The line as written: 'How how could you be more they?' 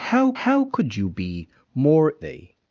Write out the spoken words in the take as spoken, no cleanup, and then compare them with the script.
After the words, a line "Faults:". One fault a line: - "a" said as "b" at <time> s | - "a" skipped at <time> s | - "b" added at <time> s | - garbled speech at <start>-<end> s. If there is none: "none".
'How how could you be more they?'
Faults:
none